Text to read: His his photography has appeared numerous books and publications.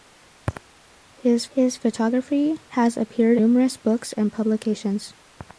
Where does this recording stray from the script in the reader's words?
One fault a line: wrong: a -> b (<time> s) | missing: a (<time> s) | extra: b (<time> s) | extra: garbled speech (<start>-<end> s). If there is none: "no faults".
no faults